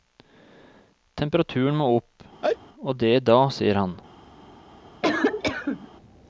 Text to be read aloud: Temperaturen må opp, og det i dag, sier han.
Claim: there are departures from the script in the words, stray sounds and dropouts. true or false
true